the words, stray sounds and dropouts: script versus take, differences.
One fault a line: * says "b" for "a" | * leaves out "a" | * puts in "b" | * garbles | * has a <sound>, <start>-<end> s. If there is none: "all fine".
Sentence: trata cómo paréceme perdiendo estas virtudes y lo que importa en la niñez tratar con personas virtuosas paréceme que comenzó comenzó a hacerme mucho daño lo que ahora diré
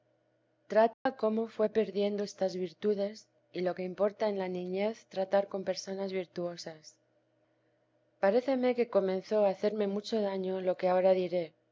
* has a dropout, 0.9-1.1 s
* says "fué" for "paréceme"
* leaves out "comenzó"